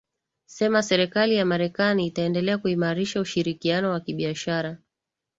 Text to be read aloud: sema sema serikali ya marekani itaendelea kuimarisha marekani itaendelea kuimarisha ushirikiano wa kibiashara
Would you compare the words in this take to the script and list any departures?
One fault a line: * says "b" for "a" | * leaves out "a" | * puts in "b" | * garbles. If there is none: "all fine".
* leaves out "sema"
* leaves out "marekani itaendelea kuimarisha"